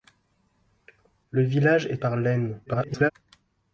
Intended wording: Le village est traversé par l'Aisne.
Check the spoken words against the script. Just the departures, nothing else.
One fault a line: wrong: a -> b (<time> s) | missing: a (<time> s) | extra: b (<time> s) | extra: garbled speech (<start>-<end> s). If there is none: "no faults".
missing: traversé (2.0 s)
extra: garbled speech (2.7-3.1 s)